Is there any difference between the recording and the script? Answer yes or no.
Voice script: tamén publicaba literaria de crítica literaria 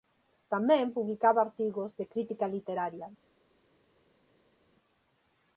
yes